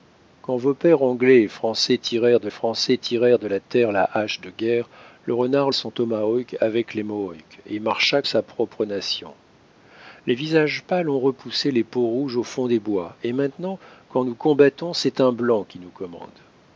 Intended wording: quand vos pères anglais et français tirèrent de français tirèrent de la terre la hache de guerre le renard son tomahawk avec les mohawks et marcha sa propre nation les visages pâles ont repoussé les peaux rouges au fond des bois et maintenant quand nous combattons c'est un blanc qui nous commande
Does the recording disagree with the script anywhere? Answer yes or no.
no